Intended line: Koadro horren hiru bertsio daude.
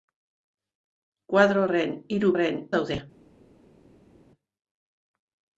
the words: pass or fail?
fail